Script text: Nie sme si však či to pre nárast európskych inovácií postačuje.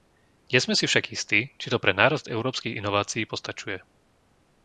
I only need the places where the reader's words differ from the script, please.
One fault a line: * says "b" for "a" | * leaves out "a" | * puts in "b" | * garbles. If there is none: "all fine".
* puts in "istí"